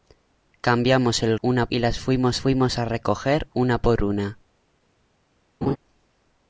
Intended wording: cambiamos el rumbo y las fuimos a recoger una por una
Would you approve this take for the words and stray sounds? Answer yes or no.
no